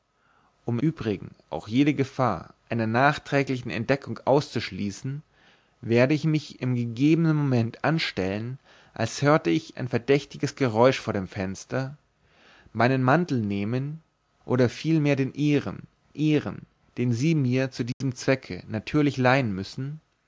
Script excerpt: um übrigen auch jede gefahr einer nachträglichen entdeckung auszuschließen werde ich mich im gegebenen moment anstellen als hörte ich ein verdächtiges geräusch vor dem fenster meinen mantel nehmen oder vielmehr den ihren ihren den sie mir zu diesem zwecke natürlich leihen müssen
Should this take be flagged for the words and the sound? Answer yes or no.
yes